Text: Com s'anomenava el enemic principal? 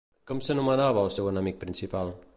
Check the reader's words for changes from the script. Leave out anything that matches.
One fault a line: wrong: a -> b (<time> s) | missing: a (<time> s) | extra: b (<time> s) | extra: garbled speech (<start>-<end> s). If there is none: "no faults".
extra: seu (1.1 s)